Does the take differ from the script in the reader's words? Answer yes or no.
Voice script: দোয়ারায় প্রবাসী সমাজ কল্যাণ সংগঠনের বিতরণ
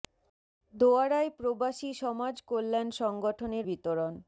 no